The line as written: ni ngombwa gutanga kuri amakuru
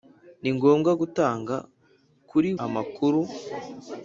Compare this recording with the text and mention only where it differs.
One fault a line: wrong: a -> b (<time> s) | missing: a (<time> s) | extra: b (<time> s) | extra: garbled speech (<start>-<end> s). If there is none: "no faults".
no faults